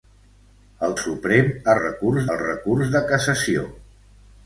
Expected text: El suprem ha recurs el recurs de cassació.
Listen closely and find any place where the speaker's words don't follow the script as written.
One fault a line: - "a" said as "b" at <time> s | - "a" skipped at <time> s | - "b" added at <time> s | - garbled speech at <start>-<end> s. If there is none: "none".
none